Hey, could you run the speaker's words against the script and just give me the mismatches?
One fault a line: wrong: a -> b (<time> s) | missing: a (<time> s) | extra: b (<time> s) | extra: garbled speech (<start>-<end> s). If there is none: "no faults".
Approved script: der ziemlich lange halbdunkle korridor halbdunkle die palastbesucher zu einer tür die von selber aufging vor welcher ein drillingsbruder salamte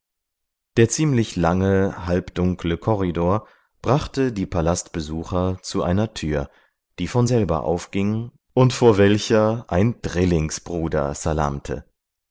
wrong: halbdunkle -> brachte (3.8 s)
extra: und (8.5 s)